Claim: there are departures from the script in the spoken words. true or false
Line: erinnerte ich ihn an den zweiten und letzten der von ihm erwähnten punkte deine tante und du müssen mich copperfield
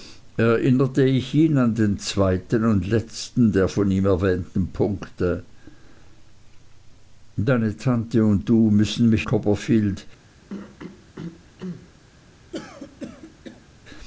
false